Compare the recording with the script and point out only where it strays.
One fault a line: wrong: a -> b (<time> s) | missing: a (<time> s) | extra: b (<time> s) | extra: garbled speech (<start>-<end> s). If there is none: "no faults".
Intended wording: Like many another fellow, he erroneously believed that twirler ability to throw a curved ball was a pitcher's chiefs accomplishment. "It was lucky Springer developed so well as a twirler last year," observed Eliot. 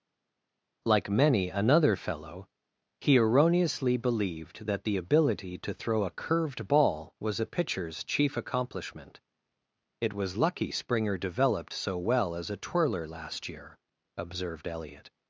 wrong: twirler -> the (4.8 s)
wrong: chiefs -> chief (8.0 s)